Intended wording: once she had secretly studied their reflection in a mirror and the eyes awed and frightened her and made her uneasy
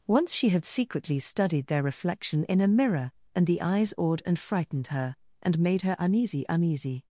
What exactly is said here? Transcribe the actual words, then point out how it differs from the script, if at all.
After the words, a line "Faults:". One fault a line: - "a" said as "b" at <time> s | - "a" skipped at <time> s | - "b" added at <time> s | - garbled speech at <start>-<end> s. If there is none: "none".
once she had secretly studied their reflection in a mirror and the eyes awed and frightened her and made her uneasy uneasy
Faults:
- "uneasy" added at 6.5 s